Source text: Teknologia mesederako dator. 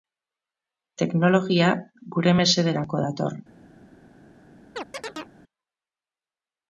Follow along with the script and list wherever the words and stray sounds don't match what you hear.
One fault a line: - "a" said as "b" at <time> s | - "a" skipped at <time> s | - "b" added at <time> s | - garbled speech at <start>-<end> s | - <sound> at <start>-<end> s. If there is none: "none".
- "gure" added at 2.2 s
- chirp at 4.8-5.3 s